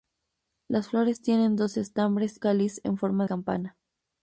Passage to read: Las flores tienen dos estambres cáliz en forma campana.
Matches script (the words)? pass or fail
pass